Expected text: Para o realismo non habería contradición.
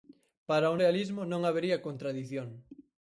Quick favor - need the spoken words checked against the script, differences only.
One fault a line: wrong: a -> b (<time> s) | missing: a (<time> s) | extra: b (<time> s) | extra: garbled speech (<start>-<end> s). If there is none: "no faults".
no faults